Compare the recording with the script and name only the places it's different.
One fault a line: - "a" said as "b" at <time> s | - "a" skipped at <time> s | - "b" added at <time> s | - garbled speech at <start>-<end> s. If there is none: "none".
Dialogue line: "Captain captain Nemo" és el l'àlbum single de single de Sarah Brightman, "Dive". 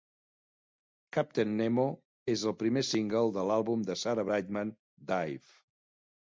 - "captain" skipped at 1.5 s
- "l'àlbum" said as "primer" at 2.6 s
- "single" said as "l'àlbum" at 3.5 s